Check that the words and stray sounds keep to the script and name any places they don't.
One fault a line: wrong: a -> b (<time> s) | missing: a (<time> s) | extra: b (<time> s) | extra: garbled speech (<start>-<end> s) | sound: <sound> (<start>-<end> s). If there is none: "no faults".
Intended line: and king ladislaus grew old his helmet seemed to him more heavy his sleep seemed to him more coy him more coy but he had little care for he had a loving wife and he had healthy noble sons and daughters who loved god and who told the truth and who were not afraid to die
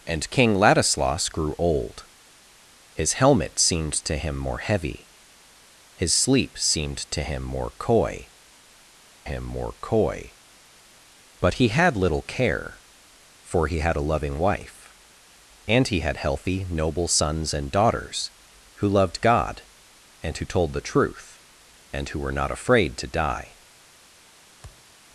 sound: thud (24.6-24.9 s)